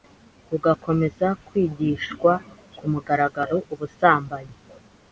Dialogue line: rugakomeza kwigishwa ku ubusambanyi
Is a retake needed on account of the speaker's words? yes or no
yes